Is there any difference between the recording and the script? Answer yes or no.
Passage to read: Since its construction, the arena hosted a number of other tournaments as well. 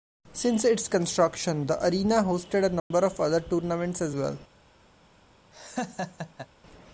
no